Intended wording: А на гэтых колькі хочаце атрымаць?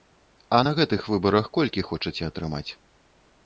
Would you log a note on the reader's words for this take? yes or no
yes